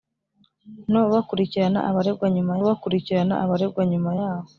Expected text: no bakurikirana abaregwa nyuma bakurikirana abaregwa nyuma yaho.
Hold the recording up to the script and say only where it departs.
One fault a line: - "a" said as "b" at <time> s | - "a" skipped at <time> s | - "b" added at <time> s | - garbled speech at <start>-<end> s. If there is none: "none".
none